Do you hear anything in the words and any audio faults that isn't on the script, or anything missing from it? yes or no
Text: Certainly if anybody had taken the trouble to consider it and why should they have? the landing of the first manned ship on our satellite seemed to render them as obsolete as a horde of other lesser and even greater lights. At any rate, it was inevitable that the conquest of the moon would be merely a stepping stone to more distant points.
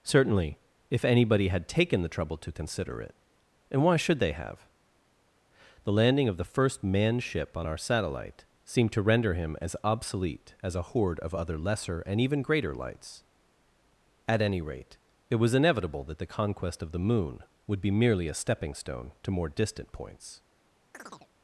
yes